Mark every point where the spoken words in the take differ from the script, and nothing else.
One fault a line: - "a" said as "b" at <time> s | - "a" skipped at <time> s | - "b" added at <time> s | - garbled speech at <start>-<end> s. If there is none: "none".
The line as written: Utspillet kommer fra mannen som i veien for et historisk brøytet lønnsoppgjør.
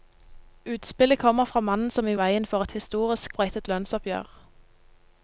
none